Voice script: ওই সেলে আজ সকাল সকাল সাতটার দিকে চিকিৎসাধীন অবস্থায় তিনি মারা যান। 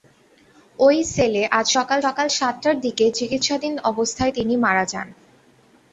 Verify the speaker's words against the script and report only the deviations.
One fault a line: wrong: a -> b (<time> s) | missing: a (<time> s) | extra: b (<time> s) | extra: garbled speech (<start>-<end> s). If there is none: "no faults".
no faults